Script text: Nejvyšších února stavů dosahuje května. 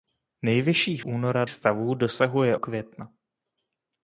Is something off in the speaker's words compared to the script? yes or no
no